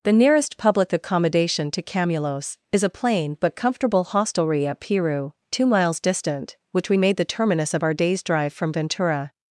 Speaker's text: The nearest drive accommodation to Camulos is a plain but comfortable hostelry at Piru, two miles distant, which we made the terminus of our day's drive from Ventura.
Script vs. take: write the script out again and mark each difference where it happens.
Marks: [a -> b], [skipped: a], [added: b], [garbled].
The nearest [drive -> public] accommodation to Camulos is a plain but comfortable hostelry at Piru, two miles distant, which we made the terminus of our day's drive from Ventura.